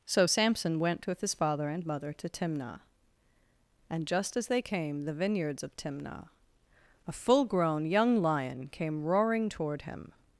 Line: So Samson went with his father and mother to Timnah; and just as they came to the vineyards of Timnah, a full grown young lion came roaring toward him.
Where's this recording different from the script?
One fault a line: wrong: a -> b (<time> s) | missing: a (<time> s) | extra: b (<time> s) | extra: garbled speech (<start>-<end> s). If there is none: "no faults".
missing: to (5.0 s)